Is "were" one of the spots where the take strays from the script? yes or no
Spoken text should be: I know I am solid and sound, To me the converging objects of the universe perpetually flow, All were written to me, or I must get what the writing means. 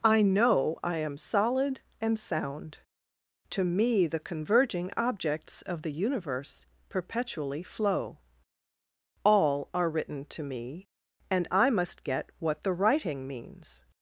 yes